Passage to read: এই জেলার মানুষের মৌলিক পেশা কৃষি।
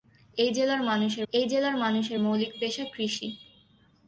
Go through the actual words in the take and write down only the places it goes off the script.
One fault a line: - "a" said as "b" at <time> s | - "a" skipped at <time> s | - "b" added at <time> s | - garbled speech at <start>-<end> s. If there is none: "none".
- "এই জেলার মানুষের" added at 1.3 s